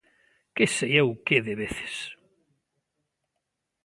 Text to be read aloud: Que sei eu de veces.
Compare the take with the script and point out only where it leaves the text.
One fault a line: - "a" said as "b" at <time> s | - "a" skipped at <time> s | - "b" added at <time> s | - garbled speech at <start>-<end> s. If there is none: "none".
- "que" added at 1.2 s